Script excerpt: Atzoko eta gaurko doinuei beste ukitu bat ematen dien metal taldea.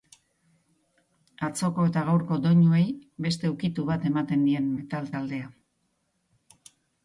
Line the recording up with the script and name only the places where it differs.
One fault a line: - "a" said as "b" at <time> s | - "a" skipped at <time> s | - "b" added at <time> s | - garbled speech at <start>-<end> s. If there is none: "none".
none